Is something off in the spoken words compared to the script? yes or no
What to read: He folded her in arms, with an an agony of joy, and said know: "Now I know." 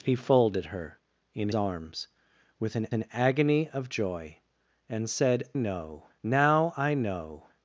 no